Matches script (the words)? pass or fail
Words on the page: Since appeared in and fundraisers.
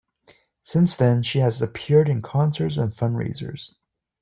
fail